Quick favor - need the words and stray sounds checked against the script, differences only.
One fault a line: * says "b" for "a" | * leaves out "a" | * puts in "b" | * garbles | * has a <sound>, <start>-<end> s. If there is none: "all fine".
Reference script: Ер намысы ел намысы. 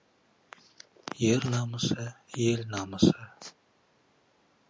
all fine